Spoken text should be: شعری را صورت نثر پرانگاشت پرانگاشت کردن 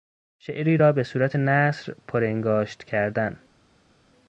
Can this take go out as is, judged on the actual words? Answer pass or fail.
fail